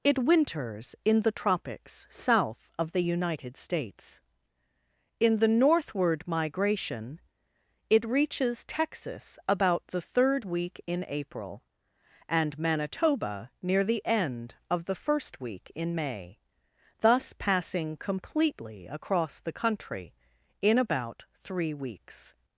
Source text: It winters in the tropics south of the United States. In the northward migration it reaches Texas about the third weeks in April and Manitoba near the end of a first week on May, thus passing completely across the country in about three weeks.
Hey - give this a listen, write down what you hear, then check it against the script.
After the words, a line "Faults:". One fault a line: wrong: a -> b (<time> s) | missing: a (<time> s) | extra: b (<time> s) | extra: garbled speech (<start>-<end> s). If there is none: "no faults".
It winters in the tropics south of the United States. In the northward migration it reaches Texas about the third week in April and Manitoba near the end of the first week in May, thus passing completely across the country in about three weeks.
Faults:
wrong: weeks -> week (10.4 s)
wrong: a -> the (14.8 s)
wrong: on -> in (15.7 s)